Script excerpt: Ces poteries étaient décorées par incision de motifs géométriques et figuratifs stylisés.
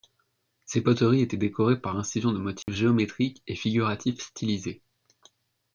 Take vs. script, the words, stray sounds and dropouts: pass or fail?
fail